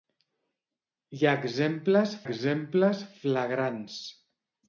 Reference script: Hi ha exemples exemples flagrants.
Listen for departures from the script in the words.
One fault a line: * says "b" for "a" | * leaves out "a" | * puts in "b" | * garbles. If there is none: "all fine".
all fine